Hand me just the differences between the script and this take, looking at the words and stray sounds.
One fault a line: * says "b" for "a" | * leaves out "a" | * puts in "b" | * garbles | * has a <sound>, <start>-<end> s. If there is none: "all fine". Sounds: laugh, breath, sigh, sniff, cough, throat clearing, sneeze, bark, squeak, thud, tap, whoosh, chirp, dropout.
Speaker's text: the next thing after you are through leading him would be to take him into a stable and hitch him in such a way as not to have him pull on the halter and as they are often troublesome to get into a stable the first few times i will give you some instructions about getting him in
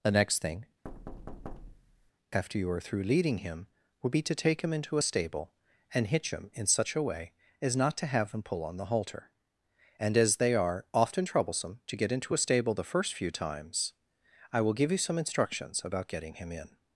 * has a thud, 0.8-2.1 s